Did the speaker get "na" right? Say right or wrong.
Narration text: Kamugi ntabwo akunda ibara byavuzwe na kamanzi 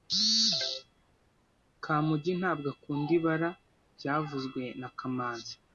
right